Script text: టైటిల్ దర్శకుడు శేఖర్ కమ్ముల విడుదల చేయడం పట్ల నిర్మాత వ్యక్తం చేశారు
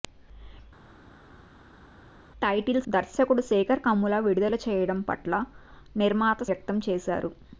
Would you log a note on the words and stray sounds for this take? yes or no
no